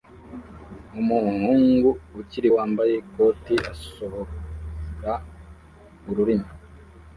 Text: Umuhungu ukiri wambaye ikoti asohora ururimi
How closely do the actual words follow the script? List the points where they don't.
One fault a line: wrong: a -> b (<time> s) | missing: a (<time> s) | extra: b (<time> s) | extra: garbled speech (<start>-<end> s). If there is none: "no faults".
no faults